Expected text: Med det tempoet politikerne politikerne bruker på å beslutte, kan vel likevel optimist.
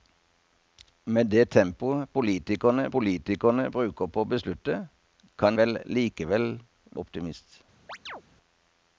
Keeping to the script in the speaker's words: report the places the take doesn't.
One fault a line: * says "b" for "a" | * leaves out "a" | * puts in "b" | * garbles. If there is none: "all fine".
all fine